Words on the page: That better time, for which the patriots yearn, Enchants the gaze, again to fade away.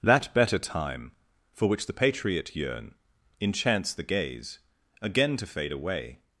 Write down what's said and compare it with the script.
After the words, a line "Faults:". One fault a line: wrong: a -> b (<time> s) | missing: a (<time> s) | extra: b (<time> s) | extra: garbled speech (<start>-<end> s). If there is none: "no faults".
That better time, for which the patriot yearn, Enchants the gaze, again to fade away.
Faults:
wrong: patriots -> patriot (1.9 s)